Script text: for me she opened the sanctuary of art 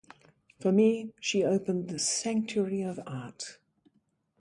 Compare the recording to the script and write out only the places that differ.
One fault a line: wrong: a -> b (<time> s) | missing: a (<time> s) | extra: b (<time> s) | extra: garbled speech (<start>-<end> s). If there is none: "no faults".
no faults